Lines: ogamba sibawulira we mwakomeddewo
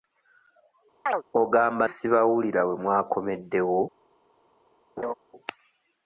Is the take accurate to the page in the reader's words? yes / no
yes